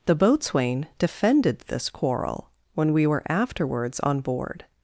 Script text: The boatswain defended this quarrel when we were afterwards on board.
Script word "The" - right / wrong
right